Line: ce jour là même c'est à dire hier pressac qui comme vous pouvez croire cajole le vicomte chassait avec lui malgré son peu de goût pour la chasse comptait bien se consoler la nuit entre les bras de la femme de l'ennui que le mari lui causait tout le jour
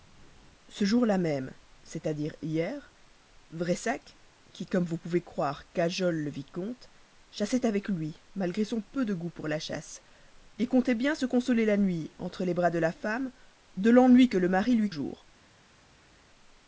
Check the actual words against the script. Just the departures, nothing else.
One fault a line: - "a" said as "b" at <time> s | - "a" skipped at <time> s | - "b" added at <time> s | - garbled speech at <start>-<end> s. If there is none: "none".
- "causait tout le" skipped at 14.9 s